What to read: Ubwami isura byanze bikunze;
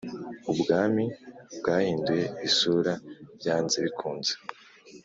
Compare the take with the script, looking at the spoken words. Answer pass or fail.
fail